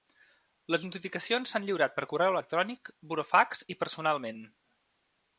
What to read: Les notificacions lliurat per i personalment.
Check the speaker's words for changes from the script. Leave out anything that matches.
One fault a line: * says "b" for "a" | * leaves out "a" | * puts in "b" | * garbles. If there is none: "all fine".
* puts in "s'han"
* puts in "correu electrònic burofax"